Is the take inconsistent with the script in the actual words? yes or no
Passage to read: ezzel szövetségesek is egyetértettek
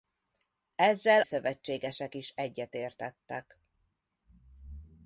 no